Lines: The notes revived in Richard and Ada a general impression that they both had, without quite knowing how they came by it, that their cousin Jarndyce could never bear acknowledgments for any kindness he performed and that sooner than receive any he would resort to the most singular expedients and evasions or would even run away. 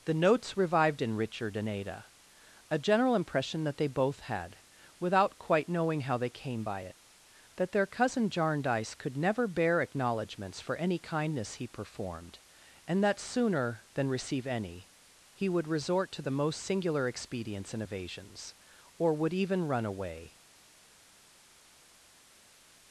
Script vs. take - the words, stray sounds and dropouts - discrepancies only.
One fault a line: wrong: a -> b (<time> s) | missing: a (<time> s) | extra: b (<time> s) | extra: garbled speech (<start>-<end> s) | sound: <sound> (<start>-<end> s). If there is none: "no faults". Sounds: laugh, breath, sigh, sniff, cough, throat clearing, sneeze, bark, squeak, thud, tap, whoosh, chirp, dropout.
no faults